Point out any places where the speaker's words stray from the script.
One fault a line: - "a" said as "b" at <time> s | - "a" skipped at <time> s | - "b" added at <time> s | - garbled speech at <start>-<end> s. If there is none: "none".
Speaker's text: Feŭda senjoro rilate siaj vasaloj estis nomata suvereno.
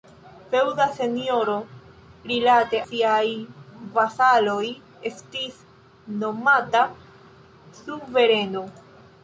none